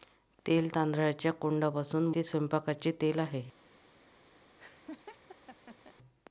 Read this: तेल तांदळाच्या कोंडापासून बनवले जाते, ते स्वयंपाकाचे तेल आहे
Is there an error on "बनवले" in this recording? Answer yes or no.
yes